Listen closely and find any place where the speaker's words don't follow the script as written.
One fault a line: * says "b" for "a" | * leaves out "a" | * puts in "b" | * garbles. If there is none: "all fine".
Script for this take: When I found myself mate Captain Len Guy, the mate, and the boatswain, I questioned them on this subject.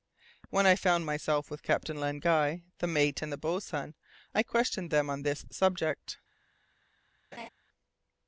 * says "with" for "mate"